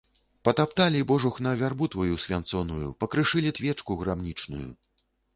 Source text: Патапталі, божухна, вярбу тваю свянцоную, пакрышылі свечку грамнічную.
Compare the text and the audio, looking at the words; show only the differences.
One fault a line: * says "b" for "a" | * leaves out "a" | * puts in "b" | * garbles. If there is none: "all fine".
all fine